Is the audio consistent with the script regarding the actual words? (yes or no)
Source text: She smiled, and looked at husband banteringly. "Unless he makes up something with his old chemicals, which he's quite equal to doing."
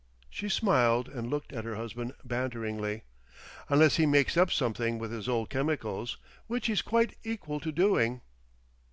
no